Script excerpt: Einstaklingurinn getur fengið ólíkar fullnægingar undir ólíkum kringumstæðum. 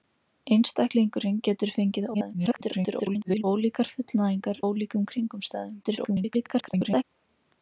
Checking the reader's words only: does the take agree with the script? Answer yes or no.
no